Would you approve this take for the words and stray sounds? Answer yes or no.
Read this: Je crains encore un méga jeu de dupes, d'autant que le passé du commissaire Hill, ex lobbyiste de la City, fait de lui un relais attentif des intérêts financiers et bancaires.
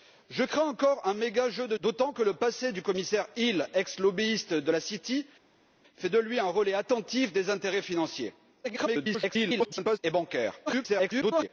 no